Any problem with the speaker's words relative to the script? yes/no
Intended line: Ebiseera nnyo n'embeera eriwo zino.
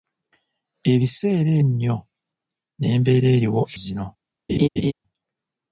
no